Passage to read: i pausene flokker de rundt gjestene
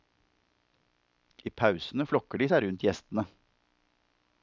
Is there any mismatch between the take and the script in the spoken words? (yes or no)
yes